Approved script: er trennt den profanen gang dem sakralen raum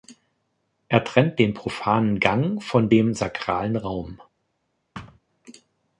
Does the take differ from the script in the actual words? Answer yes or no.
yes